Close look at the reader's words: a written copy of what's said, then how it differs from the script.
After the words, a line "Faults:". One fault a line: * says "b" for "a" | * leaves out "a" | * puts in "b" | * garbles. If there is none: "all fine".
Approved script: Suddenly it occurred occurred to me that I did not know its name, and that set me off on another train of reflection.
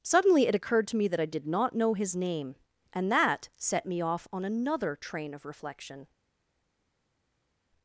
Suddenly it occurred to me that I did not know his name, and that set me off on another train of reflection.
Faults:
* leaves out "occurred"
* says "his" for "its"